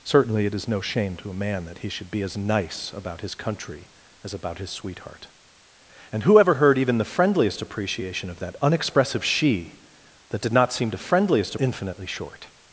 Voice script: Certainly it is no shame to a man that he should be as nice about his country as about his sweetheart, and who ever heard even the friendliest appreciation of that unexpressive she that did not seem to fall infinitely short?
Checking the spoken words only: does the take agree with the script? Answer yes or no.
no